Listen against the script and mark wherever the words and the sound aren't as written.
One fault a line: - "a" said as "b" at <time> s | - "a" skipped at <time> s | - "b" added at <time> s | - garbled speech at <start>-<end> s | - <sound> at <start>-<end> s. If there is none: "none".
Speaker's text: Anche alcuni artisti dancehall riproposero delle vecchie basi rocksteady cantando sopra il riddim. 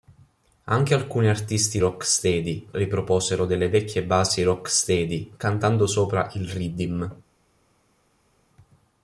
- "dancehall" said as "rocksteady" at 1.8 s